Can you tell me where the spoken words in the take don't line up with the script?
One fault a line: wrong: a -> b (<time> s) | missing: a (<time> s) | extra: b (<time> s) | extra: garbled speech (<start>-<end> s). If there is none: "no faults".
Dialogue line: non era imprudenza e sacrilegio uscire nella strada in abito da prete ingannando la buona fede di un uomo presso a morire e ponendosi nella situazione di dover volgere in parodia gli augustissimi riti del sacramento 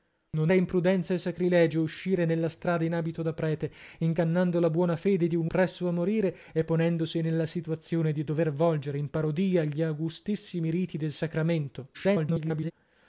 missing: era (0.5 s)
missing: uomo (5.5 s)
extra: garbled speech (11.9-12.7 s)